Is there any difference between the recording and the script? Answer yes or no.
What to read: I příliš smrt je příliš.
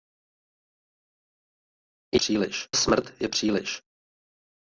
no